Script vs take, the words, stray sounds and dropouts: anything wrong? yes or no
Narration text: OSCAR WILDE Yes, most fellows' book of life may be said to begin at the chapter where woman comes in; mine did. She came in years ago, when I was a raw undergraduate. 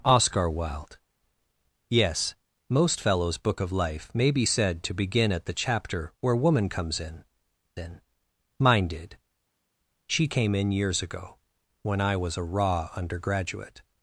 yes